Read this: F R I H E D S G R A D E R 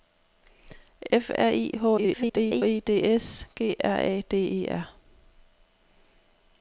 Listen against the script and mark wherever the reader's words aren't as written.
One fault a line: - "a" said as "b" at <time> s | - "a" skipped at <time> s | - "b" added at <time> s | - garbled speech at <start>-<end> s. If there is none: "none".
- garbled speech at 2.0-2.6 s